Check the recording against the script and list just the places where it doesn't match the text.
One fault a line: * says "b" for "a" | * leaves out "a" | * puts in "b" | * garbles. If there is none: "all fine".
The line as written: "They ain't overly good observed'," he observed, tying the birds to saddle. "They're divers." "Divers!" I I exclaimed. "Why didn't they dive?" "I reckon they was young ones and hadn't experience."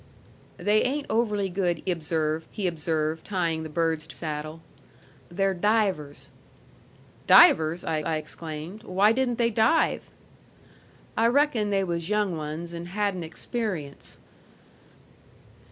all fine